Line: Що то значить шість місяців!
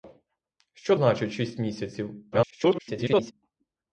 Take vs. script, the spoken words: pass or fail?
fail